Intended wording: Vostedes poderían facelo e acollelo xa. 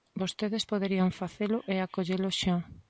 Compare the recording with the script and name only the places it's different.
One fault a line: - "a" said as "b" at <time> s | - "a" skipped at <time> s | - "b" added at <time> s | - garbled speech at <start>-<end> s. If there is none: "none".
none